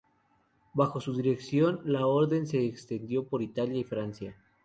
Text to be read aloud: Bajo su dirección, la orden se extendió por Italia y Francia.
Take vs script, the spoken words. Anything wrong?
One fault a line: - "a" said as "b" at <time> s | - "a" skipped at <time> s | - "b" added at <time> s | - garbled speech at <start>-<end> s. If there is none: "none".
none